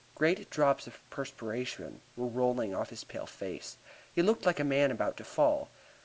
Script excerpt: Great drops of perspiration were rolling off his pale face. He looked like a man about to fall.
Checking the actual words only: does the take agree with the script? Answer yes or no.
yes